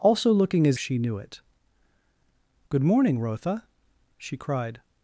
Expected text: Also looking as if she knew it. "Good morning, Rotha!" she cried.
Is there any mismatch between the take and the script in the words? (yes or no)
yes